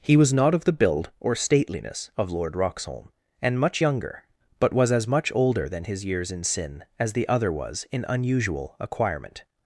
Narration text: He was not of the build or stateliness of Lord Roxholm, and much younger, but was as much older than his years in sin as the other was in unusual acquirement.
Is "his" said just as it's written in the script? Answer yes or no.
yes